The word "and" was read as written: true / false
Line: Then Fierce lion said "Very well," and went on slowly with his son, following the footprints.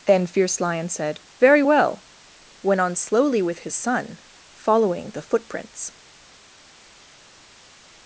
false